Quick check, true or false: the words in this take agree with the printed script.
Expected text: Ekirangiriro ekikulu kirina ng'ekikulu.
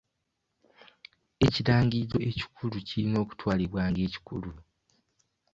false